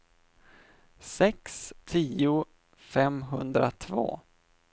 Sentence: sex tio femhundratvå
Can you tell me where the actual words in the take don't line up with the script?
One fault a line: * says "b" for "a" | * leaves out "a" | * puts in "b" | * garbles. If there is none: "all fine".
all fine